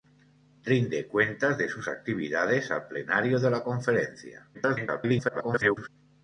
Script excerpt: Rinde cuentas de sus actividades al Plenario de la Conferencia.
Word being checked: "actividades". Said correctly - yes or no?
yes